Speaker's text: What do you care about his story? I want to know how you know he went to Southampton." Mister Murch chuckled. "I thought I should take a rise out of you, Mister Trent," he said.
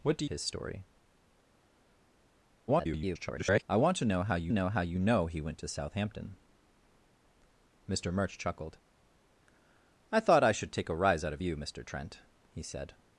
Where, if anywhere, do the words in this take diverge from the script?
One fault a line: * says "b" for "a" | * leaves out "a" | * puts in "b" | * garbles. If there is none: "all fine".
* leaves out "you care about"
* garbles
* puts in "how you know"